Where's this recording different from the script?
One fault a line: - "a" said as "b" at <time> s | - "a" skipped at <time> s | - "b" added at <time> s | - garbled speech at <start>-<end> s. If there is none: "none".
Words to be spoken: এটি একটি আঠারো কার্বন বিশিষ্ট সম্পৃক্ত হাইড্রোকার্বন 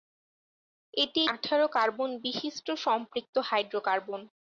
- "একটি" skipped at 1.2 s